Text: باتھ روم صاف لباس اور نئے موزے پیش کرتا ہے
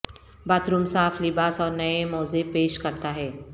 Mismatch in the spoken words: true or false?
false